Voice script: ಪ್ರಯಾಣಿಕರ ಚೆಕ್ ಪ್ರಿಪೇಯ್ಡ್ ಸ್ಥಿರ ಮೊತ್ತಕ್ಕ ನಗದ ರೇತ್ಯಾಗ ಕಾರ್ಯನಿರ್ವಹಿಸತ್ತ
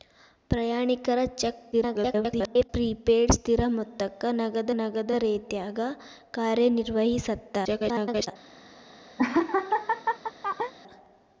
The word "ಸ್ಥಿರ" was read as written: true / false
true